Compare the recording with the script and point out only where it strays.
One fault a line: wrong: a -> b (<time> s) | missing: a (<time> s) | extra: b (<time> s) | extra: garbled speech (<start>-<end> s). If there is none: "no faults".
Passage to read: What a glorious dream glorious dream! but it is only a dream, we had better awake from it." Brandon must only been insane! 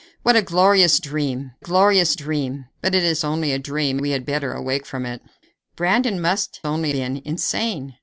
no faults